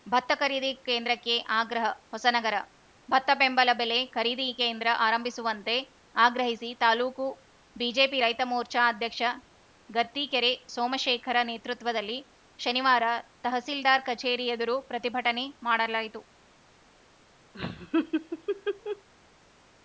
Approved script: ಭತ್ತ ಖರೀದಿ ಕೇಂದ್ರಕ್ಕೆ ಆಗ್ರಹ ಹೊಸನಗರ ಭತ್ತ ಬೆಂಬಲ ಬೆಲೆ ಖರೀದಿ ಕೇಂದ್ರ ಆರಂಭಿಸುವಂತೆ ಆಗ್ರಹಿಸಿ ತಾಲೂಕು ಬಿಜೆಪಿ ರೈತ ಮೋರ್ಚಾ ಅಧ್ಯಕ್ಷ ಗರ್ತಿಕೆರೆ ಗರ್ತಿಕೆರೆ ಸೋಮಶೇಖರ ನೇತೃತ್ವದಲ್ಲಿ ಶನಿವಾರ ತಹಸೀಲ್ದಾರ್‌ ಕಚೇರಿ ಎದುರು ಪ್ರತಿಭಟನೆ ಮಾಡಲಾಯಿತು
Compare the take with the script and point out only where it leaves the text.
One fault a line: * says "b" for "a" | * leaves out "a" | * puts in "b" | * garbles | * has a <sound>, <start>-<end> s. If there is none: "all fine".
* leaves out "ಗರ್ತಿಕೆರೆ"
* has a laugh, 17.5-19.1 s